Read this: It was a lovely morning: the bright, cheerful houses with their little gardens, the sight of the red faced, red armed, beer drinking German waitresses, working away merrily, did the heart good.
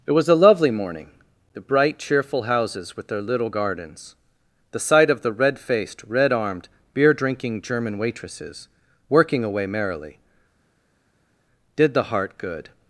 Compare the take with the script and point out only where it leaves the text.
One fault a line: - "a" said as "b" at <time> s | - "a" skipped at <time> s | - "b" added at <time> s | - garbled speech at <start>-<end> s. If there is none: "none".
none